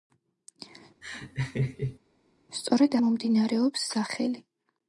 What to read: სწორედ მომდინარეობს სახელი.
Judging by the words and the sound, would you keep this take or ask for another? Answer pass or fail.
fail